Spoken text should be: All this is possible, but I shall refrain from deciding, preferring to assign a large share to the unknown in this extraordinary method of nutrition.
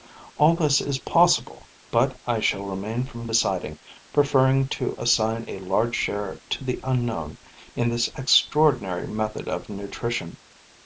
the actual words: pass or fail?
pass